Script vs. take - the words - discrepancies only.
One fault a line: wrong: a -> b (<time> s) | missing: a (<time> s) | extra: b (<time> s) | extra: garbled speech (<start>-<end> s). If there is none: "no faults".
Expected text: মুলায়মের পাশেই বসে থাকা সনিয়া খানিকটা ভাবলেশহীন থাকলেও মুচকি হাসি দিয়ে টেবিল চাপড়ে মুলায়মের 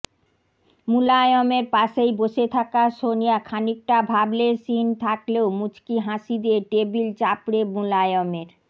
no faults